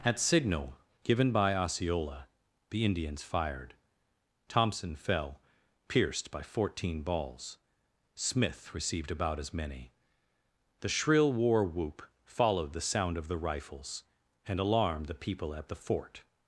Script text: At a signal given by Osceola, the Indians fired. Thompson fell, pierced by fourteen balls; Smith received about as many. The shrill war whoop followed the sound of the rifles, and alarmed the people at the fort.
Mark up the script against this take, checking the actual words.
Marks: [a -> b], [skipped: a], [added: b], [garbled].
At [skipped: a] signal given by Osceola, the Indians fired. Thompson fell, pierced by fourteen balls; Smith received about as many. The shrill war whoop followed the sound of the rifles, and alarmed the people at the fort.